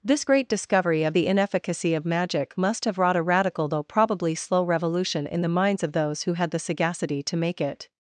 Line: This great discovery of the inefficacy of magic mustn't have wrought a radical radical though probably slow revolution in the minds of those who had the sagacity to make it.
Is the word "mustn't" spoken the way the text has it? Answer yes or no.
no